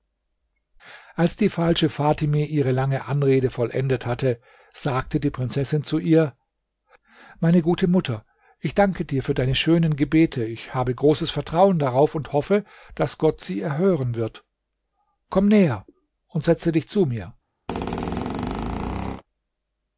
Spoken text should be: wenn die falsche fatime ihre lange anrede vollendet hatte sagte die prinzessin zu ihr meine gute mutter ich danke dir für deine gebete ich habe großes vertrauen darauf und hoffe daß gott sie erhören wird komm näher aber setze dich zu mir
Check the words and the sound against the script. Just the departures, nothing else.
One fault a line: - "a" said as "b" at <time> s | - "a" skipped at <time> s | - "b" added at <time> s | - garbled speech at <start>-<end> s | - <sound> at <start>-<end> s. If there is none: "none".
- "wenn" said as "als" at 1.1 s
- "schönen" added at 9.5 s
- "aber" said as "und" at 16.3 s
- squeak at 17.7-19.2 s